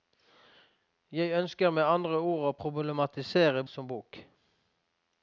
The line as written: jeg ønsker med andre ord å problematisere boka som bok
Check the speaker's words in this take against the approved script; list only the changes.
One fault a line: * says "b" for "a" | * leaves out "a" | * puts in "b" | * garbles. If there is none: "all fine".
* leaves out "boka"